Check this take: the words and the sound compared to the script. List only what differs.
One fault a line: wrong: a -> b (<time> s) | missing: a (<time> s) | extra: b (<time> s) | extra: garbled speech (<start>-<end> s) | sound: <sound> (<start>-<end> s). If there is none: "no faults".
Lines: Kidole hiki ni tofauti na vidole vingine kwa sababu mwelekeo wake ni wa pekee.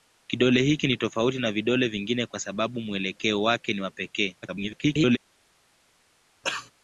extra: garbled speech (4.4-5.2 s)
sound: cough (6.4-6.7 s)